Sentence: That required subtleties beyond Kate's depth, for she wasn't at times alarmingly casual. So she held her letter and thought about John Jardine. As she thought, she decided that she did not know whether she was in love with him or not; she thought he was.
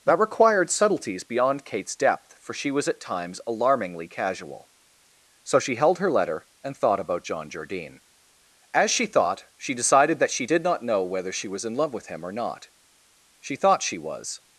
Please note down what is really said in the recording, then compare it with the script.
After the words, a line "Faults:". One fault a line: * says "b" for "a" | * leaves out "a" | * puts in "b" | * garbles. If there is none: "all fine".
That required subtleties beyond Kate's depth, for she was at times alarmingly casual. So she held her letter and thought about John Jardine. As she thought, she decided that she did not know whether she was in love with him or not; she thought she was.
Faults:
* says "was" for "wasn't"
* says "she" for "he"